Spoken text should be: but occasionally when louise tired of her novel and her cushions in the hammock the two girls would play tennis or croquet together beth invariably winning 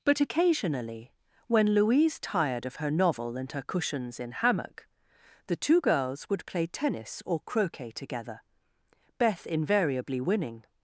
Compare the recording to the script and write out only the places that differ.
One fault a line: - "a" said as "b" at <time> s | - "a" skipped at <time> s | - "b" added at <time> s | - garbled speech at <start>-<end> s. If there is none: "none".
- "the" skipped at 4.3 s